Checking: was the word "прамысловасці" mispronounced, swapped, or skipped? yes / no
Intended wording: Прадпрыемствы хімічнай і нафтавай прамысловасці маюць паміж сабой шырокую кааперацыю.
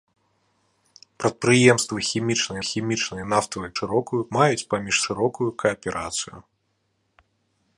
yes